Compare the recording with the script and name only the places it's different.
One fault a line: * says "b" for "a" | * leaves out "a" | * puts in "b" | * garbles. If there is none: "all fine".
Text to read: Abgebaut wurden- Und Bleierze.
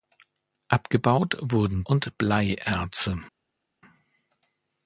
all fine